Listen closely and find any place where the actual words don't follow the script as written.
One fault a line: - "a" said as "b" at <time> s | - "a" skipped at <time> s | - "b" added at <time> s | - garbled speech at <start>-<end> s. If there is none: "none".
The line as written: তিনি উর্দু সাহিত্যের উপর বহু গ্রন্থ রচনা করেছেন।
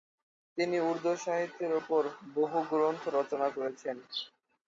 none